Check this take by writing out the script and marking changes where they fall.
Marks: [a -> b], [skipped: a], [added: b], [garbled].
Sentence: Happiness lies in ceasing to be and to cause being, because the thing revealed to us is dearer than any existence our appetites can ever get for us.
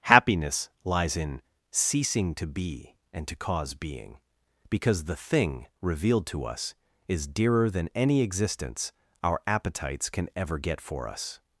Happiness lies in ceasing to be and to cause being, because the thing revealed to us is dearer than any existence our appetites can ever get for us.